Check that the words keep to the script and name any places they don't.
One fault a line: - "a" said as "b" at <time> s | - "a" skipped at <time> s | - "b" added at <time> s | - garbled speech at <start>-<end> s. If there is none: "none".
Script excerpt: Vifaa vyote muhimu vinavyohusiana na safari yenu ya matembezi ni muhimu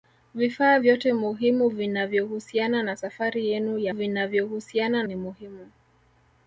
- "matembezi" said as "vinavyohusiana" at 3.9 s